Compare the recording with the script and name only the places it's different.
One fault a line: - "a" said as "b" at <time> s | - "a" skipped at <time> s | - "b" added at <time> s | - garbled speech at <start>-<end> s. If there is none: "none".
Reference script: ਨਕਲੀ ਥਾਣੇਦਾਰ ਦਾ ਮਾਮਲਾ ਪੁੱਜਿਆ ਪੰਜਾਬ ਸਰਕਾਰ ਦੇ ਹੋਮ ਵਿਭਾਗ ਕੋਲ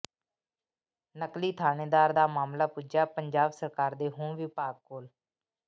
none